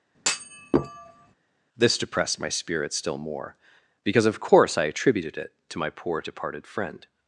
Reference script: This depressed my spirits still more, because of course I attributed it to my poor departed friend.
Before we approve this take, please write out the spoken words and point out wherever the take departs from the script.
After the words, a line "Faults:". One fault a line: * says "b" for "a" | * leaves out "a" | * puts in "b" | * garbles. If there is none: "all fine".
This depressed my spirits still more, because of course I attributed it to my poor departed friend.
Faults:
all fine